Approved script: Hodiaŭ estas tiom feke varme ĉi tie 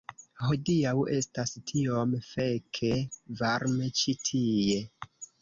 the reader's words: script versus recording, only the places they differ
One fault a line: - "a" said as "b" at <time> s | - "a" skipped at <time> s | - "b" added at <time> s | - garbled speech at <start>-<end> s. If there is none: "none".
none